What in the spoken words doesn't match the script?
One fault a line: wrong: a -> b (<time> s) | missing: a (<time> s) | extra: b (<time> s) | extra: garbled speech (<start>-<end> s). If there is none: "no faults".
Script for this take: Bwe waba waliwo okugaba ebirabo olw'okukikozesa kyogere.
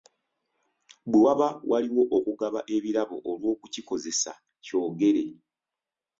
no faults